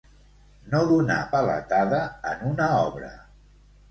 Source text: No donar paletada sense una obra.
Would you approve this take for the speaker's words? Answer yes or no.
no